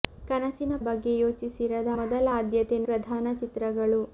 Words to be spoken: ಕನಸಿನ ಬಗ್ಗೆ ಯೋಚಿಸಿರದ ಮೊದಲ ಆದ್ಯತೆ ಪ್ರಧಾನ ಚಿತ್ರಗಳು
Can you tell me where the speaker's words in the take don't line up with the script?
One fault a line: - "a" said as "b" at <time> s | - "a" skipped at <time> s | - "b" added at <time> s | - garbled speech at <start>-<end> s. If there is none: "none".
none